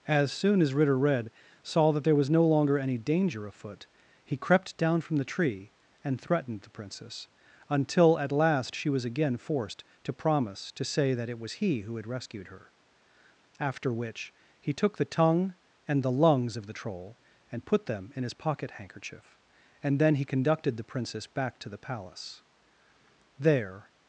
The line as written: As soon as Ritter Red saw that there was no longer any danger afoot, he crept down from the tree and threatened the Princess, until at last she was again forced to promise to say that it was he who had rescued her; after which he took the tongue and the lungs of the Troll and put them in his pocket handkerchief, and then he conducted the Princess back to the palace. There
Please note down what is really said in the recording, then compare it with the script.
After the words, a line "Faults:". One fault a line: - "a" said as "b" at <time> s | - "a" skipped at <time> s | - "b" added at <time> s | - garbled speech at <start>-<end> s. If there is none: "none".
As soon as Ritter Red saw that there was no longer any danger afoot, he crept down from the tree and threatened the Princess, until at last she was again forced to promise to say that it was he who had rescued her; after which he took the tongue and the lungs of the Troll and put them in his pocket handkerchief, and then he conducted the Princess back to the palace. There
Faults:
none